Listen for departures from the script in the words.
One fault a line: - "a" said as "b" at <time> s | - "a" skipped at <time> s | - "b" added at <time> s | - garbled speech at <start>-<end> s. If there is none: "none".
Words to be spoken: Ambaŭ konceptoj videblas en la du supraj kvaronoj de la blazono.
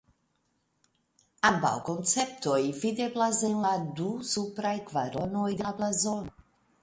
none